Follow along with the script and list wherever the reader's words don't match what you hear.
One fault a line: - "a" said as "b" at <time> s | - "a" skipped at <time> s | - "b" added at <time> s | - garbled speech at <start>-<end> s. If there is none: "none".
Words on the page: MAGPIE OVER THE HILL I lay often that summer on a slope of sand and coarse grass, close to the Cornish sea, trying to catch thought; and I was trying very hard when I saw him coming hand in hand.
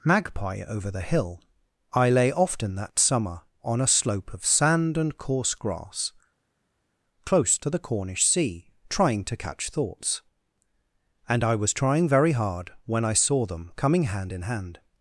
- "thought" said as "thoughts" at 9.7 s
- "him" said as "them" at 13.5 s